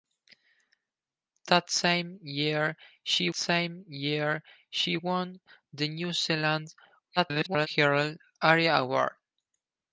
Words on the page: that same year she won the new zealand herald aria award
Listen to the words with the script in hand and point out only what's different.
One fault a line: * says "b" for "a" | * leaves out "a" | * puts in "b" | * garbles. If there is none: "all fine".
* puts in "same year she"
* garbles